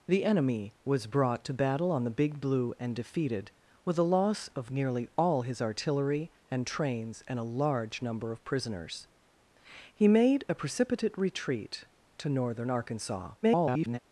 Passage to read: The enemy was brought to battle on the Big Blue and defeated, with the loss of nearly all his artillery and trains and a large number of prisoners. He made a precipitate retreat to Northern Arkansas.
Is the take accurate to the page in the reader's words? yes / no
no